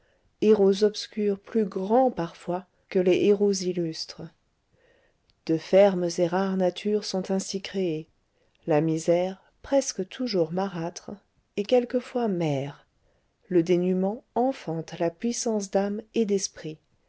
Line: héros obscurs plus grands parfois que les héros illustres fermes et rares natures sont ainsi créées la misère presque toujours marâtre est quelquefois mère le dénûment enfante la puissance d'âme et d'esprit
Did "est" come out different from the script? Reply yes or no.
no